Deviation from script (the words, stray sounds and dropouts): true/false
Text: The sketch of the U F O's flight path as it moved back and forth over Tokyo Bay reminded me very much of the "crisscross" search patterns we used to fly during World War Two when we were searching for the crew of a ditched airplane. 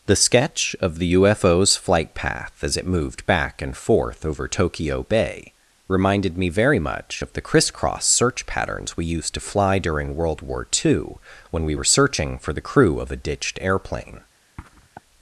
true